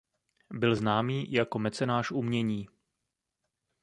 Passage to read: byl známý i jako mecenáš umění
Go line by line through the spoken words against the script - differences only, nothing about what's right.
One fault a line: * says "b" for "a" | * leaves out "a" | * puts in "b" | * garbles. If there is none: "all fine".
all fine